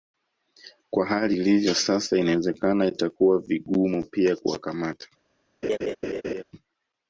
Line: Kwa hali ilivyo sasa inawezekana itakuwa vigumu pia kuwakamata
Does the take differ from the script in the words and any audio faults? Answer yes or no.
yes